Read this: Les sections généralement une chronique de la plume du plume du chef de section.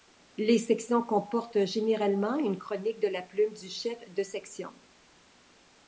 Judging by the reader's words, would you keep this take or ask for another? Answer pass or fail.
fail